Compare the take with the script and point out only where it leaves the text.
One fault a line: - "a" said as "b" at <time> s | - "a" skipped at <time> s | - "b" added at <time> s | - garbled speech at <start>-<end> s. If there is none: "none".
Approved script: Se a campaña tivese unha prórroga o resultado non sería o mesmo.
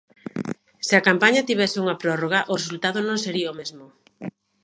none